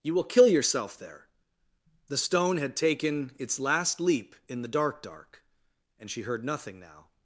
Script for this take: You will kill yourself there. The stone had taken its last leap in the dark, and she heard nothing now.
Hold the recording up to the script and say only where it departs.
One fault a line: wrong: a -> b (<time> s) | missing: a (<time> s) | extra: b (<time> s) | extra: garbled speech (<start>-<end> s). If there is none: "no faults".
extra: dark (5.0 s)